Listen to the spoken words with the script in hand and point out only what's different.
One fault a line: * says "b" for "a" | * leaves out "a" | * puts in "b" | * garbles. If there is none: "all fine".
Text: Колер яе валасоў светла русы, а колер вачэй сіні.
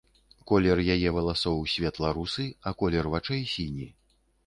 all fine